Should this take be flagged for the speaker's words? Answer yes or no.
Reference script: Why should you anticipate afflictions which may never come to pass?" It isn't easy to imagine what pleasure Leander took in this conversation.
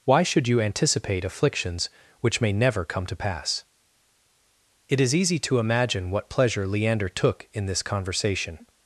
yes